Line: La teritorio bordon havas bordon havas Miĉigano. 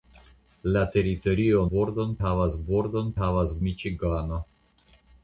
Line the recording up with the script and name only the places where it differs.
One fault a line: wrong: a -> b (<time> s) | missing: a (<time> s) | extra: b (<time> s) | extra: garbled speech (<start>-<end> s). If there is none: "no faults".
no faults